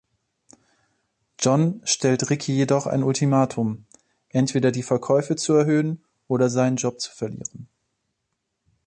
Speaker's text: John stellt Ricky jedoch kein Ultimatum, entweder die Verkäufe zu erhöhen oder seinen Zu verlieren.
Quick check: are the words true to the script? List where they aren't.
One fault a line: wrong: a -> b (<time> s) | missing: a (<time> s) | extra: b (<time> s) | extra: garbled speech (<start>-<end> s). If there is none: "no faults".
wrong: kein -> ein (2.9 s)
extra: Job (6.8 s)